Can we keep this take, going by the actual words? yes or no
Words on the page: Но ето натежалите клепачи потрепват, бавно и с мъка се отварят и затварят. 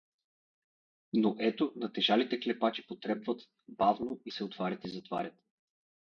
no